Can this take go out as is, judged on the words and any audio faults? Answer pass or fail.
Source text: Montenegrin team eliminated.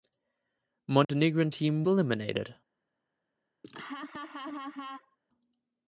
fail